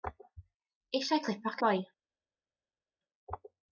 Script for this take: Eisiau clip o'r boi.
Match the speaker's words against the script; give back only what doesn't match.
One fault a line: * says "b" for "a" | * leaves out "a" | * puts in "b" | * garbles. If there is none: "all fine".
all fine